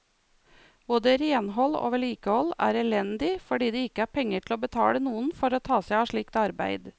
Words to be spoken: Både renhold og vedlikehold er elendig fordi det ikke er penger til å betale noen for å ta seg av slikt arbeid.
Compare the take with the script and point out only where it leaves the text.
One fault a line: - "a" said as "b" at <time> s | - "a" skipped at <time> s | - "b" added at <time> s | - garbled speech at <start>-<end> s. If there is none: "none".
none